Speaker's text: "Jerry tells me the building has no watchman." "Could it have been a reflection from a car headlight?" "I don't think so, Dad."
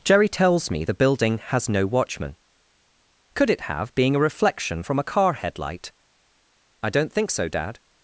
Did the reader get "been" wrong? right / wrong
wrong